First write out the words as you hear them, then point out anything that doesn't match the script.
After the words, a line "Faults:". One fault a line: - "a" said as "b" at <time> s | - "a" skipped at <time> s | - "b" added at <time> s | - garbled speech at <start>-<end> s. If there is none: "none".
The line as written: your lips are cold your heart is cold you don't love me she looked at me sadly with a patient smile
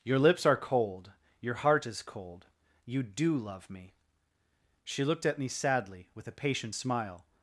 your lips are cold your heart is cold you do love me she looked at me sadly with a patient smile
Faults:
- "don't" said as "do" at 3.0 s